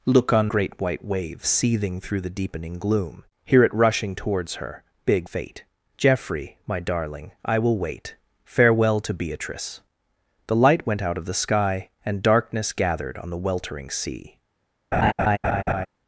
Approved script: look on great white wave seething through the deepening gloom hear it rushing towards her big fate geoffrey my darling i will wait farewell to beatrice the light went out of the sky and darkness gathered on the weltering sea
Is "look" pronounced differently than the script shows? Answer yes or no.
no